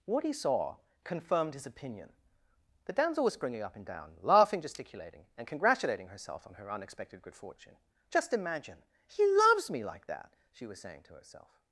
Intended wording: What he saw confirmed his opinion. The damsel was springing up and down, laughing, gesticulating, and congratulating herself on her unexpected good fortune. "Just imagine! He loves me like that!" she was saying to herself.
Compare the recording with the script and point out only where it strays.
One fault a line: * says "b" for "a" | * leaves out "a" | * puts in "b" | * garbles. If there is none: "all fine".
all fine